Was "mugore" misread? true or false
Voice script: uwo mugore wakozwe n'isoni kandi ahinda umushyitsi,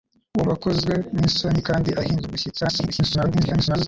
true